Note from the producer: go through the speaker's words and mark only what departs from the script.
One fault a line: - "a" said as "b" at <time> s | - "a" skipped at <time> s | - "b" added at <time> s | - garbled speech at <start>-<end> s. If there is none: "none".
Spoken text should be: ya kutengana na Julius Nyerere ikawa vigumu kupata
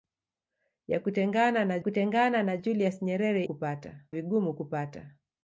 - "kutengana na" added at 1.8 s
- "ikawa" said as "kupata" at 3.4 s